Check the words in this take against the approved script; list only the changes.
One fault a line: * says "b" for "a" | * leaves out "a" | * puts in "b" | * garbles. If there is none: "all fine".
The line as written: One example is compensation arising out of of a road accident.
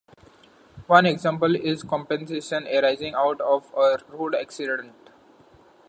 * leaves out "of"